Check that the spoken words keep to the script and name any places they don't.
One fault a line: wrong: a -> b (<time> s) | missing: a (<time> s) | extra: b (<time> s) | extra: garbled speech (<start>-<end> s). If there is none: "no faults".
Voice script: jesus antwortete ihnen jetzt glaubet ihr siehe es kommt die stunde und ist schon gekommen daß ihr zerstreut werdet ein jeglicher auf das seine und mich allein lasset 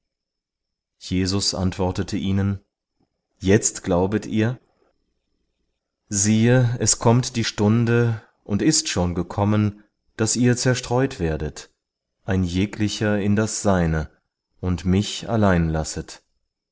wrong: auf -> in (13.2 s)